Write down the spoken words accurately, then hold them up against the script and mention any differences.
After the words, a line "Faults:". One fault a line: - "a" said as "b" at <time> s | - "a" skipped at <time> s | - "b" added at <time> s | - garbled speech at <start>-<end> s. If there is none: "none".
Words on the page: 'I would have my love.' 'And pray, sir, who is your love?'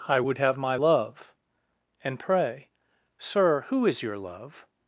'I would have my love.' 'And pray, sir, who is your love?'
Faults:
none